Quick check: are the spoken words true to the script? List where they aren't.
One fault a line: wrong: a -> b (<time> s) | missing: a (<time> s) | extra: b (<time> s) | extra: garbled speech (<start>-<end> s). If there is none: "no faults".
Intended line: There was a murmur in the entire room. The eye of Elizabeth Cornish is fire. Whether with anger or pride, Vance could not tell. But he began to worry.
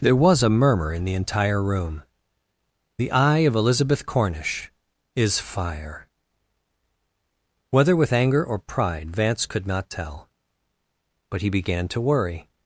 no faults